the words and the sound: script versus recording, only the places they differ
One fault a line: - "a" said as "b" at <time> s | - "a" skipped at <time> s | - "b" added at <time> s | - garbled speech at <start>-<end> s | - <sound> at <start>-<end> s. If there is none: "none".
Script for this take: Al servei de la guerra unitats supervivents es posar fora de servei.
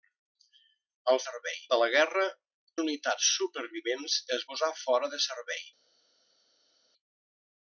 none